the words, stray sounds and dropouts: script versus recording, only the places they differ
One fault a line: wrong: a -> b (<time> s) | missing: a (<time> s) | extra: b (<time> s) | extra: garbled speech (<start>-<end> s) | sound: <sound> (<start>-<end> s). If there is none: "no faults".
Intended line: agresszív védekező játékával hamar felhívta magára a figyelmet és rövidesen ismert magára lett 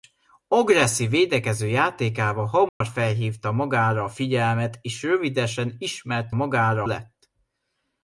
sound: dropout (2.7-2.8 s)